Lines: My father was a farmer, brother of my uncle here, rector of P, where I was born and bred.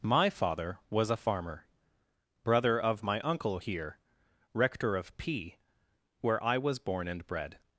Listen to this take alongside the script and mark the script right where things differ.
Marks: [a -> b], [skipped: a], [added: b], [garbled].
My father was a farmer, brother of my uncle here, rector of P, where I was born and bred.